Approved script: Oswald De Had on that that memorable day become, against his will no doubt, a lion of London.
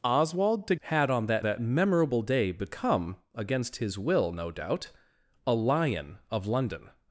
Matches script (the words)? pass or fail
pass